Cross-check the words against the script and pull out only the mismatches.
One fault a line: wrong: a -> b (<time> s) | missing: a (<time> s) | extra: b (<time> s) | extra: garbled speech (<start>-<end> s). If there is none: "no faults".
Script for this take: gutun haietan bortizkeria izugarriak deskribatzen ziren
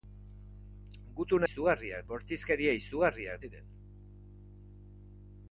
wrong: haietan -> izugarriak (1.5 s)
missing: deskribatzen (3.4 s)